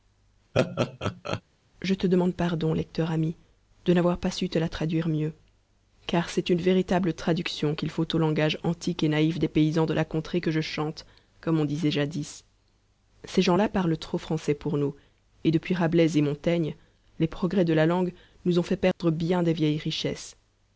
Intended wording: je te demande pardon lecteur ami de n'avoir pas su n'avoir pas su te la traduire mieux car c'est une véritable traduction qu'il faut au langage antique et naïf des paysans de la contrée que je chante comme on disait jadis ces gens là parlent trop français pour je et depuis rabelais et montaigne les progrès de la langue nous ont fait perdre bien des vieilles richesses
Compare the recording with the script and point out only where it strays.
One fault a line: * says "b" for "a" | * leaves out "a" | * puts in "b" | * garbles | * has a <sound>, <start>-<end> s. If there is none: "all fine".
* has a laugh, 0.5-1.4 s
* leaves out "n'avoir pas su"
* says "nous" for "je"
* has a dropout, 18.9-19.0 s